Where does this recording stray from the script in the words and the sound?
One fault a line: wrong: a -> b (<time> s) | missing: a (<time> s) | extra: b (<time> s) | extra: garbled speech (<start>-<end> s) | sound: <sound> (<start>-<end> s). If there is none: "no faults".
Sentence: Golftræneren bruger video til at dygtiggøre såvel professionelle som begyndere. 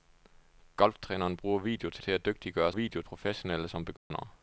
extra: til (2.0 s)
wrong: såvel -> video (2.7 s)
sound: dropout (4.0-4.1 s)